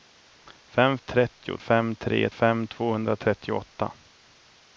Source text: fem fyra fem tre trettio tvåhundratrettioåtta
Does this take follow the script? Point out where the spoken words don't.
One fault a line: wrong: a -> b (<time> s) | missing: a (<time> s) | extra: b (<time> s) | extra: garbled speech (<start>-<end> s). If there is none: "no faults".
wrong: fyra -> trettio (1.0 s)
wrong: trettio -> fem (2.3 s)